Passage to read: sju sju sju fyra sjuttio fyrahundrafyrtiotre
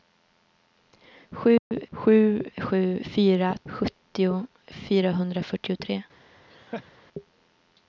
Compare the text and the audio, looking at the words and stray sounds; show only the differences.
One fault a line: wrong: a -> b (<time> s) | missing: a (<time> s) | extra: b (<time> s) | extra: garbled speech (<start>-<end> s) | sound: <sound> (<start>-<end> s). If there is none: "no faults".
sound: dropout (1.6-1.7 s)
sound: laugh (6.5-6.9 s)